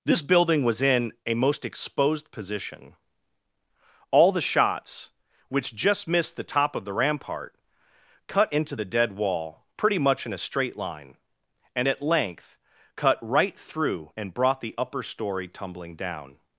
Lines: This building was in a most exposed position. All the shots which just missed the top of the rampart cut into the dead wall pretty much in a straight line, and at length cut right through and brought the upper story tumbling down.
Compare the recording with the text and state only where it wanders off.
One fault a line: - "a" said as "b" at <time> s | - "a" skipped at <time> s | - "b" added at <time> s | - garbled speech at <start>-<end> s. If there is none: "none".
none